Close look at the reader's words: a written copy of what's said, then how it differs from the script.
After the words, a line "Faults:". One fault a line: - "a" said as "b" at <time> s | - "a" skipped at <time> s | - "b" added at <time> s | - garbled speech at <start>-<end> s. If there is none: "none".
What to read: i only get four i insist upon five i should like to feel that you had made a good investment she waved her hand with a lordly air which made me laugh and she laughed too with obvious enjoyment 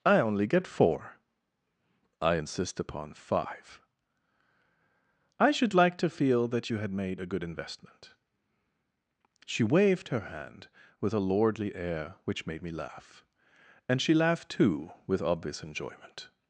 i only get four i insist upon five i should like to feel that you had made a good investment she waved her hand with a lordly air which made me laugh and she laughed too with obvious enjoyment
Faults:
none